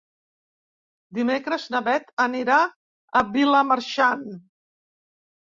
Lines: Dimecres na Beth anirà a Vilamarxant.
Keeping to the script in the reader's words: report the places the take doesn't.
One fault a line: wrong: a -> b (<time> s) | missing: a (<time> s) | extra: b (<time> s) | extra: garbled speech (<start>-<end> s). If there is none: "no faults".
no faults